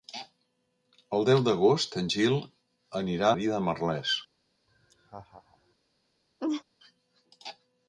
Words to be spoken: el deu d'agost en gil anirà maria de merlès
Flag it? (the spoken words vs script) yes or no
no